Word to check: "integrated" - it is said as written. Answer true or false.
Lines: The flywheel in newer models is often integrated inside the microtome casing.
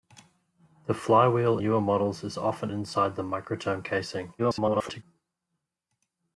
false